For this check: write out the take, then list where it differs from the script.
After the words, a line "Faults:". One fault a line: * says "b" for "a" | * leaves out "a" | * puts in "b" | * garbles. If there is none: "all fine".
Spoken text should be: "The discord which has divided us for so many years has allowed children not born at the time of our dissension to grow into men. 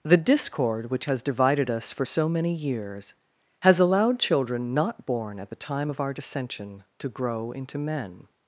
"The discord which has divided us for so many years has allowed children not born at the time of our dissension to grow into men.
Faults:
all fine